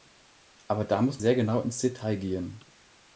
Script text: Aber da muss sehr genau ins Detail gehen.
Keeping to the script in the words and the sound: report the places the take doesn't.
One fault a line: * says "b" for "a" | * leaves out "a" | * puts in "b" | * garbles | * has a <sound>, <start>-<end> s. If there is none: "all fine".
all fine